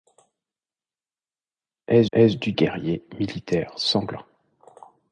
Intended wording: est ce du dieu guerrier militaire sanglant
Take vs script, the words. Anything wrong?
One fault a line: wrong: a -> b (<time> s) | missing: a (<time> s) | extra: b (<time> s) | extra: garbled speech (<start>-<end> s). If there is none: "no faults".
extra: est (2.1 s)
missing: dieu (2.5 s)